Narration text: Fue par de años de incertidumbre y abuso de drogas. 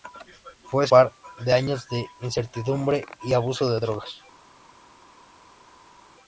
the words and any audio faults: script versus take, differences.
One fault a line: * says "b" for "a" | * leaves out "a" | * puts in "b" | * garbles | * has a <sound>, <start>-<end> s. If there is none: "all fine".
all fine